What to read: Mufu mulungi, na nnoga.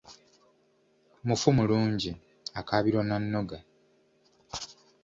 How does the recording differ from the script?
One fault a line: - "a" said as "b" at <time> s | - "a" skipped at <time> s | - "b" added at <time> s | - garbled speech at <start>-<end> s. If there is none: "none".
- "akaabirwa" added at 2.6 s